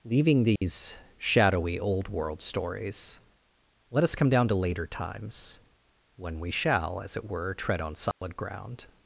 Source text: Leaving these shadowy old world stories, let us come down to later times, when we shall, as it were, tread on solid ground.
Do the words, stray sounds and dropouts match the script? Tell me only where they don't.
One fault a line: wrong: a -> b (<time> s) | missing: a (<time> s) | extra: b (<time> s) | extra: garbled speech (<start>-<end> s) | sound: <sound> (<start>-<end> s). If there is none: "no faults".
sound: dropout (0.6-0.6 s)
sound: dropout (8.1-8.2 s)